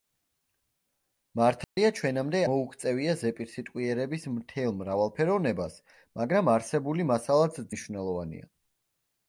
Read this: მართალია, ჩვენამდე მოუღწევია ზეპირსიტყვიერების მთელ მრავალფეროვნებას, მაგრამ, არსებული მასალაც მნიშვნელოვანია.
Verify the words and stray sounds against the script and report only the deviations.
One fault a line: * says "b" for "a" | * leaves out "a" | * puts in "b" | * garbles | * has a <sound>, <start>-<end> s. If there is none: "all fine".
* has a dropout, 1.6-1.8 s